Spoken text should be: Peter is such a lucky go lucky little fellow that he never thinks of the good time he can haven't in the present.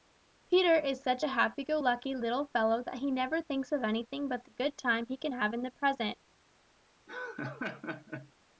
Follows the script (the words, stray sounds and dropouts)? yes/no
no